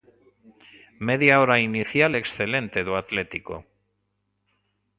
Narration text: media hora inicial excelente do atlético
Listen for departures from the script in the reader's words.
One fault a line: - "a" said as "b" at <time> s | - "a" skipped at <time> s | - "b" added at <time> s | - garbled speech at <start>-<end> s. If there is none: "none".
none